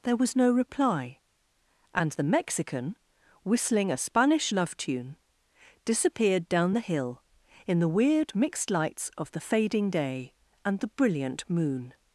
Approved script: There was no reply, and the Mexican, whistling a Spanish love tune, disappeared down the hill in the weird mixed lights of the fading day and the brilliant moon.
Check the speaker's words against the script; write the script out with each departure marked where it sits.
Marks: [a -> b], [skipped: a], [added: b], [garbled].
There was no reply, and the Mexican, whistling a Spanish love tune, disappeared down the hill in the weird mixed lights of the fading day and the brilliant moon.